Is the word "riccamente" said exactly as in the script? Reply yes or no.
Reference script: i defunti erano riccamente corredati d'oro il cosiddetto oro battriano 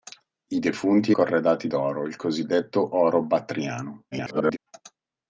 no